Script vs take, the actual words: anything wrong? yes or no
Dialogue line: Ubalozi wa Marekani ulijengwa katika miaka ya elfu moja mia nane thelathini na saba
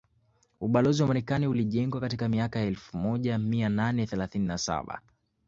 no